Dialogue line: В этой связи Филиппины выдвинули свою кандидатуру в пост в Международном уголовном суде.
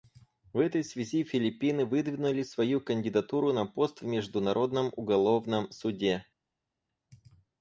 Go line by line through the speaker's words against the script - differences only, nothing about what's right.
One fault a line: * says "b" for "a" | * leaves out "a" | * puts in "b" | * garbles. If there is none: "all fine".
* says "на" for "в"